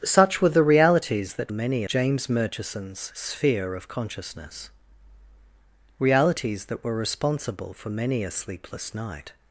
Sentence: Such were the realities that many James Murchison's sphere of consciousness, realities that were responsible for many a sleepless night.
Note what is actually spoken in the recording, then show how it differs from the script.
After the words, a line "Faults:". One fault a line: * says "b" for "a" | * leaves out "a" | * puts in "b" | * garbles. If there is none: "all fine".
Such were the realities that many James Murchison's sphere of consciousness, realities that were responsible for many a sleepless night.
Faults:
all fine